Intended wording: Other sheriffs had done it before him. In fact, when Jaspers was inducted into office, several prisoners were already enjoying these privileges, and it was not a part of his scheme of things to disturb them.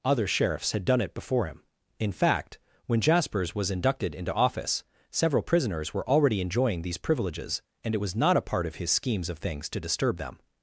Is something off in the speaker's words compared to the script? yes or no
yes